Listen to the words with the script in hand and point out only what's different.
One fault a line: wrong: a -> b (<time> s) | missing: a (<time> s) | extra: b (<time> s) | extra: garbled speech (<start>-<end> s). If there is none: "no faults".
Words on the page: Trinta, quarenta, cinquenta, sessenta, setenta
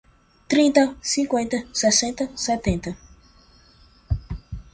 missing: quarenta (0.9 s)